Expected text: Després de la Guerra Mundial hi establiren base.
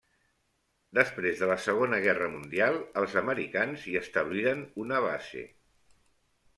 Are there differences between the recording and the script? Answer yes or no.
yes